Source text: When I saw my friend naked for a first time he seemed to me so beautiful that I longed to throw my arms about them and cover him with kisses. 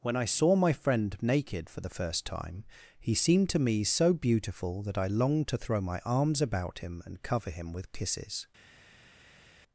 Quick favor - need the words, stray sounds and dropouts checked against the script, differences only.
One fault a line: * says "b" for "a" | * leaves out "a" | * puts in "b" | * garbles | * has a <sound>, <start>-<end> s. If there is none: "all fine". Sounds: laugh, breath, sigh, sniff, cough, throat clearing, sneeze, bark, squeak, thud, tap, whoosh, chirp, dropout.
* says "the" for "a"
* says "him" for "them"